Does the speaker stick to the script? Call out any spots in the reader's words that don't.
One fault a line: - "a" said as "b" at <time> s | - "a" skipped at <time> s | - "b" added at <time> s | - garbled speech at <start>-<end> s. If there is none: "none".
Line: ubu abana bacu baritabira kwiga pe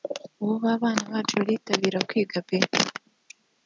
none